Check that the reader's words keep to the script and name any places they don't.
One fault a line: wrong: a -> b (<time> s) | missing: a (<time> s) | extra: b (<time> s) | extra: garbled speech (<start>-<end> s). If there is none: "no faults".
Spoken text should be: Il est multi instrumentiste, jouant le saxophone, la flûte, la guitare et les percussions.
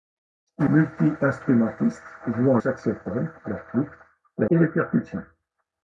missing: est (0.7 s)
missing: le (2.6 s)
missing: guitare (4.5 s)